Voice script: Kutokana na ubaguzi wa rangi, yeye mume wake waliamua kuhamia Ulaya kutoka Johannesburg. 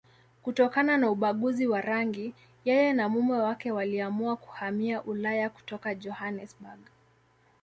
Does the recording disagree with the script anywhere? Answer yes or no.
yes